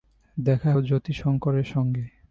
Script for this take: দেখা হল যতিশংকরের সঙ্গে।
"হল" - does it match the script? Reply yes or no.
no